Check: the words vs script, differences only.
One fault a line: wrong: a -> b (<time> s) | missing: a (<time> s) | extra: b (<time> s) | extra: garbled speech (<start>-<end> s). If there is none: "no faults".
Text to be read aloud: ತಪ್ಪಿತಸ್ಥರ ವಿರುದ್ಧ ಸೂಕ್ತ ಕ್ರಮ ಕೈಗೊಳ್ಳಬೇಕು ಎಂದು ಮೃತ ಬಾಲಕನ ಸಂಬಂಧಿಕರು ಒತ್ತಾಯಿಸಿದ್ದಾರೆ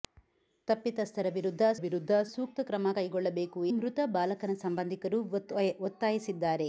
extra: ವಿರುದ್ಧ (1.8 s)
missing: ಎಂದು (3.6 s)